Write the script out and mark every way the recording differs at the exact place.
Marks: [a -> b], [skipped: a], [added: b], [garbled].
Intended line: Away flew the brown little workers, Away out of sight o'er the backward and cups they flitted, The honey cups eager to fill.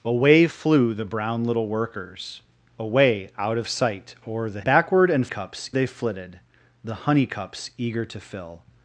Away flew the brown little workers, Away out of sight o'er the backward and cups they flitted, The honey cups eager to fill.